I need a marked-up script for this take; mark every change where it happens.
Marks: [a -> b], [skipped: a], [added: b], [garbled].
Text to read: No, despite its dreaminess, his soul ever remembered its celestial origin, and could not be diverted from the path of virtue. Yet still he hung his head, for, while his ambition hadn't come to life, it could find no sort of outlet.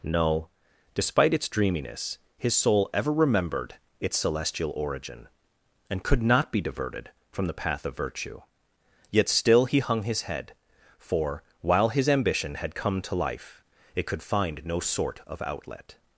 No, despite its dreaminess, his soul ever remembered its celestial origin, and could not be diverted from the path of virtue. Yet still he hung his head, for, while his ambition [hadn't -> had] come to life, it could find no sort of outlet.